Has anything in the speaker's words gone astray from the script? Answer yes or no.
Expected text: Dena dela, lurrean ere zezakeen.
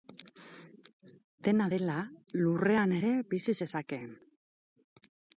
yes